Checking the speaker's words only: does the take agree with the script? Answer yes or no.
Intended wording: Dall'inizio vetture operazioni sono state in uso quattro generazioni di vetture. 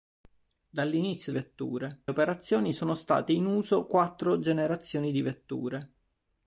yes